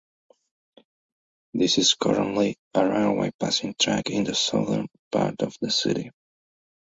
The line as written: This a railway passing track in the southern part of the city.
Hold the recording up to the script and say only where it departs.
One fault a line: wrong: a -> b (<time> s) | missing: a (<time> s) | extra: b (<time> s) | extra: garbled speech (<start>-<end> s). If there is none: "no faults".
extra: is currently (1.8 s)